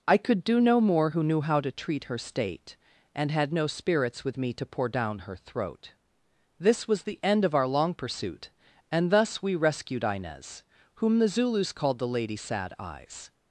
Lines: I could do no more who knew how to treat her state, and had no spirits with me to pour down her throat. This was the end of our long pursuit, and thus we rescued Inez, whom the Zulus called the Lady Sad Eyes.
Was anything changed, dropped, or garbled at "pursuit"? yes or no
no